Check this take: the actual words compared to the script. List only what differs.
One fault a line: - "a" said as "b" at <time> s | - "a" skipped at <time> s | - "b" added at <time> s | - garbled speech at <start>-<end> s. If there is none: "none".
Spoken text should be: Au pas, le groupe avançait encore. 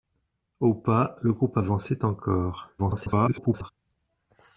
- garbled speech at 2.8-3.7 s